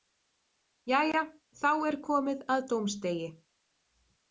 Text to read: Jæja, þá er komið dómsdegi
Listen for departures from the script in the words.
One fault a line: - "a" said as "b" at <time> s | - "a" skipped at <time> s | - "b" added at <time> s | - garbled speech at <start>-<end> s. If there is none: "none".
- "að" added at 2.6 s